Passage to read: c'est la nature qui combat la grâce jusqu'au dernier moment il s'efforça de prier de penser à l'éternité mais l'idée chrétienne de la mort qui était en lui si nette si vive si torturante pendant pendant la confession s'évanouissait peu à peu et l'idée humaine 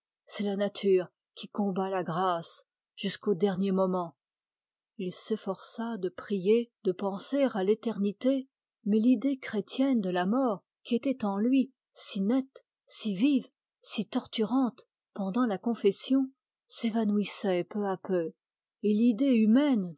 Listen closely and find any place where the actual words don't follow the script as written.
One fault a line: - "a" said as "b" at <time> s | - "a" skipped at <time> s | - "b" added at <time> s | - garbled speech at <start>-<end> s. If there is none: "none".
- "pendant" skipped at 15.5 s